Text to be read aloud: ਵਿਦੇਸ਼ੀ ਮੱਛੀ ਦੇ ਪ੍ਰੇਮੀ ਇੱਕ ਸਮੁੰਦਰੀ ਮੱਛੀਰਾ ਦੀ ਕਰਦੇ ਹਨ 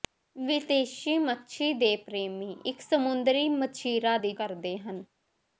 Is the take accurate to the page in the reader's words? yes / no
yes